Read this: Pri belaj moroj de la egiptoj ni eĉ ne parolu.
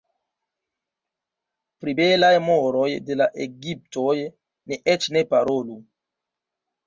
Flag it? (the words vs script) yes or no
no